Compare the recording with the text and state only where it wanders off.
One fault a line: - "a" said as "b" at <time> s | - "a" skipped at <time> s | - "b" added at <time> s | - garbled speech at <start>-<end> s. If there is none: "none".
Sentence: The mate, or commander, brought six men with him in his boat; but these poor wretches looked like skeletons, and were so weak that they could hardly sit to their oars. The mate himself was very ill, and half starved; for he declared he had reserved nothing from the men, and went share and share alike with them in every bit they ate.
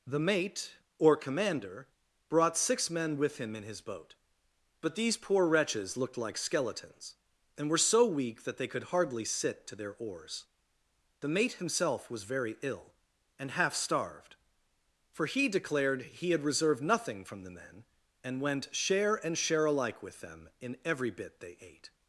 none